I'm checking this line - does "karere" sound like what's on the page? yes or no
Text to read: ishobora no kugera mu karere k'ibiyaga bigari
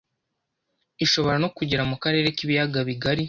yes